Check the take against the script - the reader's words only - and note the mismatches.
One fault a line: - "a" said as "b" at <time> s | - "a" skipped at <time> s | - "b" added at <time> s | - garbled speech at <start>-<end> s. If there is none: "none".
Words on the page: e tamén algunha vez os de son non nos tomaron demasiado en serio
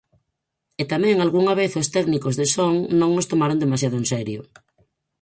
- "técnicos" added at 1.9 s